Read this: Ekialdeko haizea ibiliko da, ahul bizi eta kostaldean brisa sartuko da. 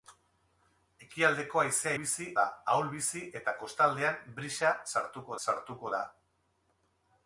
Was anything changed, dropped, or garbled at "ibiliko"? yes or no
yes